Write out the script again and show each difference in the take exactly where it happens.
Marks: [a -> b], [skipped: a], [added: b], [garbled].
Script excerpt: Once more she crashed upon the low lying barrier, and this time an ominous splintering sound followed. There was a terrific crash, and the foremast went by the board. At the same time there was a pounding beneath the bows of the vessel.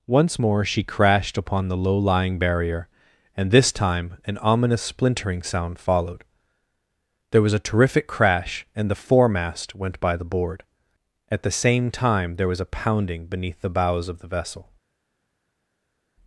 Once more she crashed upon the low lying barrier, and this time an ominous splintering sound followed. There was a terrific crash, and the foremast went by the board. At the same time there was a pounding beneath the bows of the vessel.